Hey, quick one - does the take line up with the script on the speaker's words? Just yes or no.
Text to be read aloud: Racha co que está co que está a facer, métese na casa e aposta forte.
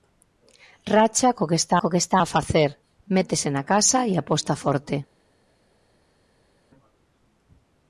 yes